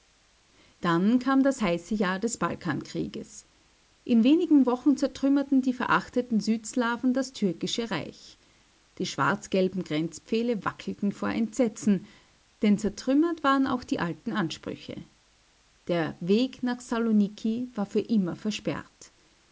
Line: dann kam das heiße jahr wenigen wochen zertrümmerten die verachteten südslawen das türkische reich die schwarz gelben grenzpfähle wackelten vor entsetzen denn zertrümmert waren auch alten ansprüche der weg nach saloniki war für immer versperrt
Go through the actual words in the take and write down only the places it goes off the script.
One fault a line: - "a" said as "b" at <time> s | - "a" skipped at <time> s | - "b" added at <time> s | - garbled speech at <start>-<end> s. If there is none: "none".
- "des balkankrieges in" added at 2.2 s
- "die" added at 13.8 s